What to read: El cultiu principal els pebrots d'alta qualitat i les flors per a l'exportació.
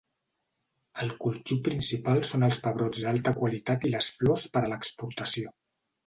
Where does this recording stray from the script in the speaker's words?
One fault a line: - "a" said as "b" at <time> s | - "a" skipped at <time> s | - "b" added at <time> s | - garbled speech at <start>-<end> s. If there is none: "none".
- "són" added at 2.3 s